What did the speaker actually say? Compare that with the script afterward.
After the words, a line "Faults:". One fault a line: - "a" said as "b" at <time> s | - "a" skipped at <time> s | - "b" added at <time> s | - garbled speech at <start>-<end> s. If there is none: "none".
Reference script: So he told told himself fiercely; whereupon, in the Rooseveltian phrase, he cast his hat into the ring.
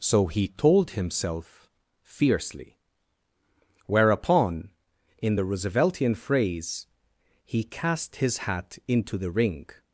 So he told himself fiercely; whereupon, in the Rooseveltian phrase, he cast his hat into the ring.
Faults:
- "told" skipped at 0.9 s